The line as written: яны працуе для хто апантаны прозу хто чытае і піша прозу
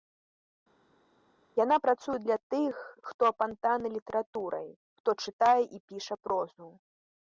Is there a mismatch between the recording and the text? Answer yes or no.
yes